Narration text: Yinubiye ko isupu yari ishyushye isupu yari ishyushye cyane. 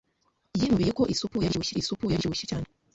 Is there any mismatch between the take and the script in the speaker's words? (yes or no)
no